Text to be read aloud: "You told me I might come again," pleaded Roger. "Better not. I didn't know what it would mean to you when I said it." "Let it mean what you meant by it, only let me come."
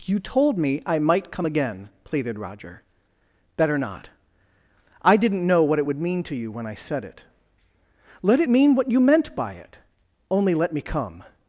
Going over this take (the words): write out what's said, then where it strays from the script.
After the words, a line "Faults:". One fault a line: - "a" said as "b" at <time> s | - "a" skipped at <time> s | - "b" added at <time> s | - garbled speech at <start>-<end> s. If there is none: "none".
"You told me I might come again," pleaded Roger. "Better not. I didn't know what it would mean to you when I said it." "Let it mean what you meant by it, only let me come."
Faults:
none